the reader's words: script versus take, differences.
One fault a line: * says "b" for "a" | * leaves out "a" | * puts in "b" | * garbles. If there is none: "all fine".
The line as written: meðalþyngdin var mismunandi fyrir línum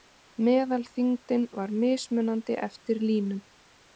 * says "eftir" for "fyrir"